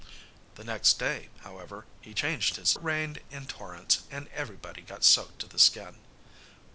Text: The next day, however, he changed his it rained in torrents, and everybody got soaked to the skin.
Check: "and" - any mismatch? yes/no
no